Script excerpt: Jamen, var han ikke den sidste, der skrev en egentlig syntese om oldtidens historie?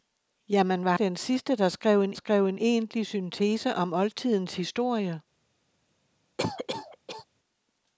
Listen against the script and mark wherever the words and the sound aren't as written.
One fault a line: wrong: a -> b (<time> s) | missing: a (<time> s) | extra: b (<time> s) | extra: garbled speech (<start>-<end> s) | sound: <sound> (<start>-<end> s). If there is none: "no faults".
missing: han ikke (1.0 s)
extra: skrev en (2.1 s)
sound: cough (6.4-7.3 s)